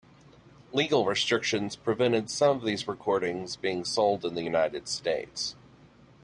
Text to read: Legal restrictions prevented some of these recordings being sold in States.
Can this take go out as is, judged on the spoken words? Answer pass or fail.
fail